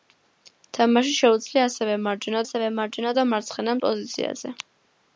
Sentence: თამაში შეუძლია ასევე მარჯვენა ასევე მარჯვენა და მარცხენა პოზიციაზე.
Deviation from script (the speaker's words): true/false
false